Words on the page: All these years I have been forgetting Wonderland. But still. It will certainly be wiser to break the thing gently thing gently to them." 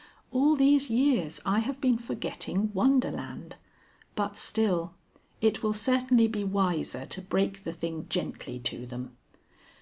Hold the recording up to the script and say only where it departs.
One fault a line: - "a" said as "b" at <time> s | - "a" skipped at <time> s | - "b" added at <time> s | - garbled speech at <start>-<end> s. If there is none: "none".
- "thing gently" skipped at 8.6 s